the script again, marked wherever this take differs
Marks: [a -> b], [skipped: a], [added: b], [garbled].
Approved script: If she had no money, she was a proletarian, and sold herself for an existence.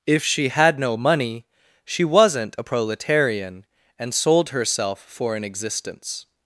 If she had no money, she [was -> wasn't] a proletarian, and sold herself for an existence.